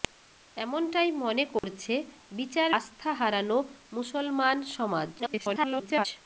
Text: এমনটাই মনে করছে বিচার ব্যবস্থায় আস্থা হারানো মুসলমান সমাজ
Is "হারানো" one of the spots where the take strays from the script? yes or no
no